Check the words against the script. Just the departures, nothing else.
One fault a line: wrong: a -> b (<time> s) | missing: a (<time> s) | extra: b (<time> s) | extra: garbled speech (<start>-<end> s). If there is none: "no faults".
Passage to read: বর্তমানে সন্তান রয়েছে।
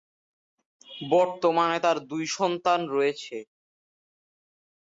extra: তার দুই (1.8 s)